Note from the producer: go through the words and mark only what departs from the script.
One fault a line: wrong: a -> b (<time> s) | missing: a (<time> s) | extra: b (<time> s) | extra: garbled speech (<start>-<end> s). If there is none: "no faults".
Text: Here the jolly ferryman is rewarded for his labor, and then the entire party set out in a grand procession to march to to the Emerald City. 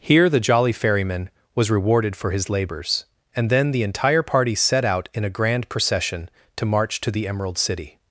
wrong: is -> was (1.5 s)
wrong: labor -> labors (2.5 s)
missing: to (7.1 s)